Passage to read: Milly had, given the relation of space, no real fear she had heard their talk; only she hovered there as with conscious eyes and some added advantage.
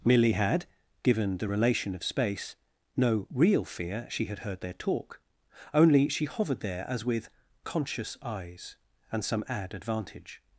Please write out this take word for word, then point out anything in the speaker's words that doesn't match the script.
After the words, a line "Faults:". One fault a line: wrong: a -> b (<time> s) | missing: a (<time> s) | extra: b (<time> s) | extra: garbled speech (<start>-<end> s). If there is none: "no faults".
Milly had, given the relation of space, no real fear she had heard their talk; only she hovered there as with conscious eyes and some add advantage.
Faults:
wrong: added -> add (9.5 s)